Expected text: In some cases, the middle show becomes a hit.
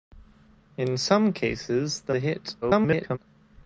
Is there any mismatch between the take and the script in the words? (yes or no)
yes